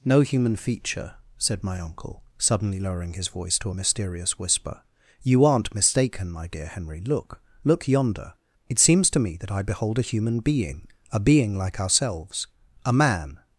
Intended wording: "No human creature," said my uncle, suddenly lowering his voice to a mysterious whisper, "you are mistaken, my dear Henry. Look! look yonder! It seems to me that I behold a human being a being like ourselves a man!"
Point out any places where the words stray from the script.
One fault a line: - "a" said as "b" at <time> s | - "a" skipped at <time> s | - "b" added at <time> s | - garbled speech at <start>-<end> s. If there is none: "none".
- "creature" said as "feature" at 0.6 s
- "are" said as "aren't" at 5.4 s